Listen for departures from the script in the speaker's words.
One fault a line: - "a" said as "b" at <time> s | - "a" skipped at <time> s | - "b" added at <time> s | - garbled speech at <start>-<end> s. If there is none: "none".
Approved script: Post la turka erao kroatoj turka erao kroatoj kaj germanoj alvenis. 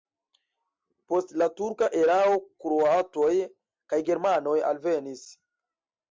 - "turka erao kroatoj" skipped at 3.3 s